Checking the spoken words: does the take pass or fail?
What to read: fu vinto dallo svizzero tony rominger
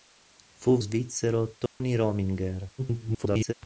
fail